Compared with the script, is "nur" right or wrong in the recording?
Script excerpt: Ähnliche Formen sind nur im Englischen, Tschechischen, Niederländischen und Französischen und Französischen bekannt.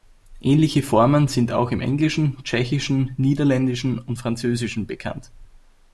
wrong